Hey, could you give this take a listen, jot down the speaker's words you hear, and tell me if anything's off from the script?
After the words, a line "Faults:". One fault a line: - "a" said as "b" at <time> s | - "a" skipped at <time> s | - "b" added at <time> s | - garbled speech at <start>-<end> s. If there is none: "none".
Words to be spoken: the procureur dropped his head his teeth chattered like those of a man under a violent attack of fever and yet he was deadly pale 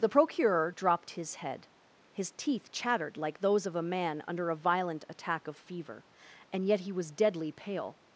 the procureur dropped his head his teeth chattered like those of a man under a violent attack of fever and yet he was deadly pale
Faults:
none